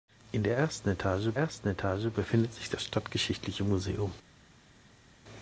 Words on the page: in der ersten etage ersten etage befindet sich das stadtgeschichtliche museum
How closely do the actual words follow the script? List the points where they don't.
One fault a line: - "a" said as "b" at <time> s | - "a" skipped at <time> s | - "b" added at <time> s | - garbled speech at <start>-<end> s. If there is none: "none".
none